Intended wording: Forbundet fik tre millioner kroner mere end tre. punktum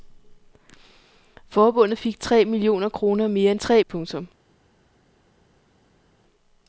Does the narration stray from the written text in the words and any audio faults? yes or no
no